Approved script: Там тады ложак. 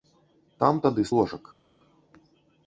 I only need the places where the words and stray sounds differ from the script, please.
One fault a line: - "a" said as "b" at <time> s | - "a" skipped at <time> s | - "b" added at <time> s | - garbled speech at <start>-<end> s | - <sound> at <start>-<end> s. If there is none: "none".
none